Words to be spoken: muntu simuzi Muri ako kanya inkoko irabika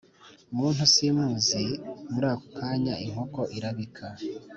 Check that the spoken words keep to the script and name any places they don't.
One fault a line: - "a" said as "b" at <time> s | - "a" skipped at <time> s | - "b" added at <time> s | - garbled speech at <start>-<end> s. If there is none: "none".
none